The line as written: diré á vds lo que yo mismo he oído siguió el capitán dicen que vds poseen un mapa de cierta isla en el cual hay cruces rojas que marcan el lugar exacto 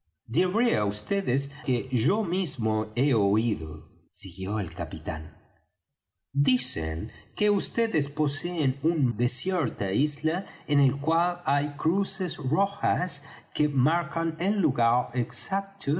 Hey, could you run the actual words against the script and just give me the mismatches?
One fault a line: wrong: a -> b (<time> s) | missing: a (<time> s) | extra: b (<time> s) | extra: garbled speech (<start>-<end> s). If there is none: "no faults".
missing: lo (1.4 s)
missing: mapa (9.0 s)